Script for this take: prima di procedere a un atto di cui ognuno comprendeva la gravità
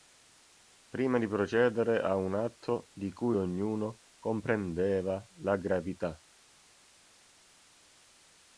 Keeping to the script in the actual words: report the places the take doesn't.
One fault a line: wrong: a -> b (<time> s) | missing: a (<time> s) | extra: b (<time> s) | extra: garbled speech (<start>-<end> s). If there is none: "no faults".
no faults